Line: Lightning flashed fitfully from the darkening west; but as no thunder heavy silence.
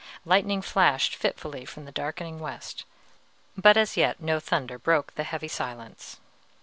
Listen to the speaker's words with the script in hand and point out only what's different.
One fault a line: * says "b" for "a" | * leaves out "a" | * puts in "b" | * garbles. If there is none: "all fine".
* puts in "yet"
* puts in "broke the"